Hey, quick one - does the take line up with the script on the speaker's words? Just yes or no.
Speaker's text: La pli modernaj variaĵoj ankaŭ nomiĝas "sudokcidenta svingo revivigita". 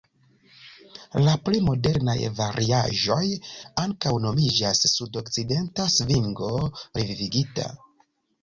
yes